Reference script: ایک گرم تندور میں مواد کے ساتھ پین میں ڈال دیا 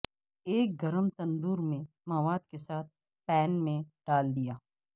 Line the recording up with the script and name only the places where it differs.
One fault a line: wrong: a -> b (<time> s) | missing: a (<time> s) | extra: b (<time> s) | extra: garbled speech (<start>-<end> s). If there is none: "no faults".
no faults